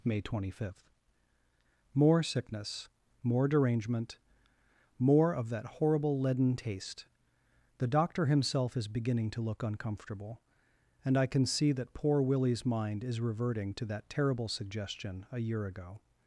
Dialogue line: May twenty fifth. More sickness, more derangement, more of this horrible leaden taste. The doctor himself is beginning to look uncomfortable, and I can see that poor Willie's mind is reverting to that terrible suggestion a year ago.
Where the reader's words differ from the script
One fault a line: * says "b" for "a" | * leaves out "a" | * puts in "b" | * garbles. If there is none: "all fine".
* says "that" for "this"